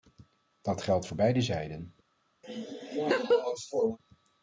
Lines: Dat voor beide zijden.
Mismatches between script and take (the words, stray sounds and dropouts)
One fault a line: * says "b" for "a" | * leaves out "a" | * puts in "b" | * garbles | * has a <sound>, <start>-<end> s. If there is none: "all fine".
* puts in "geldt"
* has a laugh, 2.4-4.0 s